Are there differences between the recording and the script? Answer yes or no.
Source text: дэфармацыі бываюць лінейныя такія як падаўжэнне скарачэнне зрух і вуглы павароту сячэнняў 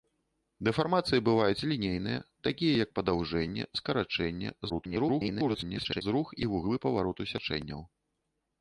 yes